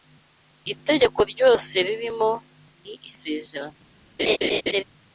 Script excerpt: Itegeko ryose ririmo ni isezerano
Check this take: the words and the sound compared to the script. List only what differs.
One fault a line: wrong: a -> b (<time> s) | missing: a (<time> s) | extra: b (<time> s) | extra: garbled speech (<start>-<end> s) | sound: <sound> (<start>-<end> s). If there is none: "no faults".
sound: laugh (4.2-4.8 s)